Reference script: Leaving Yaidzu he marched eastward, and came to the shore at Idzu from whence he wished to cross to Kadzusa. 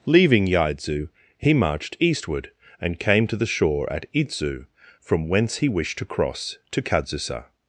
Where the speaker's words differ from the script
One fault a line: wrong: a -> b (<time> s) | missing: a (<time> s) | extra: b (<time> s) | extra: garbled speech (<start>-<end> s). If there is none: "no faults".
no faults